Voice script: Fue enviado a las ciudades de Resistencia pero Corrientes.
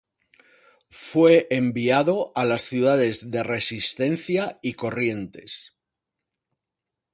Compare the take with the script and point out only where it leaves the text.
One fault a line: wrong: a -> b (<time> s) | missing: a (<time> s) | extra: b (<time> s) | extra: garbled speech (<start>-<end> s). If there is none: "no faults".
wrong: pero -> y (4.6 s)